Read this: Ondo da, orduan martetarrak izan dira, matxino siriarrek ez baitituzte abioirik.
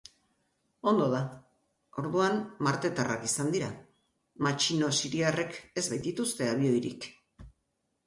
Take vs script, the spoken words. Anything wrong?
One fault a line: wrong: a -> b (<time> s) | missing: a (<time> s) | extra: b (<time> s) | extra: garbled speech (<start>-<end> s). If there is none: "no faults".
no faults